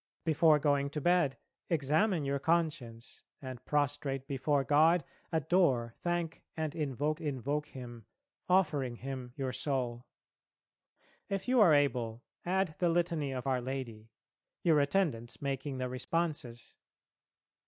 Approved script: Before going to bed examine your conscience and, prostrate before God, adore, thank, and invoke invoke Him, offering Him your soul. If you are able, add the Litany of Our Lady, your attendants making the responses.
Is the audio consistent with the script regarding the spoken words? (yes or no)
yes